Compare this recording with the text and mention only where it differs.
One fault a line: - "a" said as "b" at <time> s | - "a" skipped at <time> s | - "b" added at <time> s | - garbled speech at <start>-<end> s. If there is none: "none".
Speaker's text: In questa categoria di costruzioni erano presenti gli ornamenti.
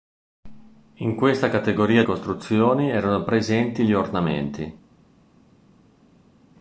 - "di" skipped at 2.0 s